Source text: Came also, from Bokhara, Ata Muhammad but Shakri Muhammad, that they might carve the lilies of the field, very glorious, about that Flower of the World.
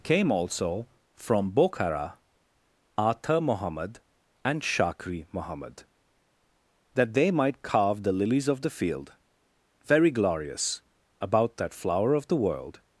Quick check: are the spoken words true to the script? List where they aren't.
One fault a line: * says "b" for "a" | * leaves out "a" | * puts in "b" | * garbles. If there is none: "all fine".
* says "and" for "but"